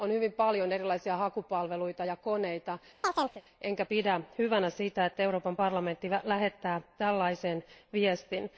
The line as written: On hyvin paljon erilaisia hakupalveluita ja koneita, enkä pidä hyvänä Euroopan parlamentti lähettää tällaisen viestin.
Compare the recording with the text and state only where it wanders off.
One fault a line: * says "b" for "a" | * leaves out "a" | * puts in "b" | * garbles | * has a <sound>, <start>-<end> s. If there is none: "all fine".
* has a chirp, 3.0-3.4 s
* puts in "sitä että"